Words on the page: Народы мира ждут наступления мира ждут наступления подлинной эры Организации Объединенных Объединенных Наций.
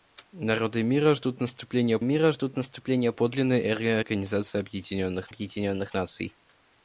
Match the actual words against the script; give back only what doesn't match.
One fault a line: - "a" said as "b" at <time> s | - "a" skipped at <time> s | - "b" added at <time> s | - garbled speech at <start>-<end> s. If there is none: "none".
none